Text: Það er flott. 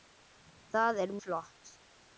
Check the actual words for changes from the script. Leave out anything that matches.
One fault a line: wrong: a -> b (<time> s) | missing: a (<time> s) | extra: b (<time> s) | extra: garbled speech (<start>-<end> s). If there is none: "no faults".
no faults